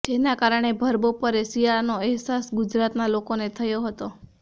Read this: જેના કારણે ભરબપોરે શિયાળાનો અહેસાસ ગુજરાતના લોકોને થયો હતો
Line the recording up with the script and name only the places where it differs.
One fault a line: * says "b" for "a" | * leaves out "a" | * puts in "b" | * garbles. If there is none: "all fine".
all fine